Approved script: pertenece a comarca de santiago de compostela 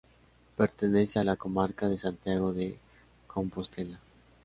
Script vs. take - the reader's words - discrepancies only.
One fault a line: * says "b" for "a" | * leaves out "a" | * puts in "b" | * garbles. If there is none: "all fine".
* puts in "la"